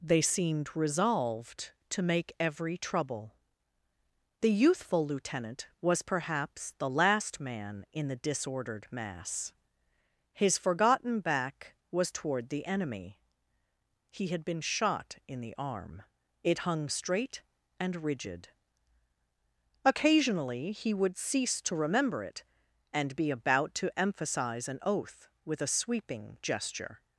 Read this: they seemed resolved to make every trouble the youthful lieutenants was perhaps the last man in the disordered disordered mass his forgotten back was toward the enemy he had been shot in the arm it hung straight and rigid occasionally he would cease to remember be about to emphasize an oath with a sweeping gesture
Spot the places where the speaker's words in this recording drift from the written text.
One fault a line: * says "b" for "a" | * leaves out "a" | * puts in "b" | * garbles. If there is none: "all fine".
* says "lieutenant" for "lieutenants"
* leaves out "disordered"
* puts in "it and"